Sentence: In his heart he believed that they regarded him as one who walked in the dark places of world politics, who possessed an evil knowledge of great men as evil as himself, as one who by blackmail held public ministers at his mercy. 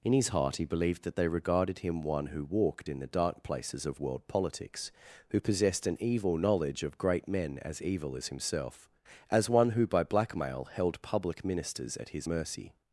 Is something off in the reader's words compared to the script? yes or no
yes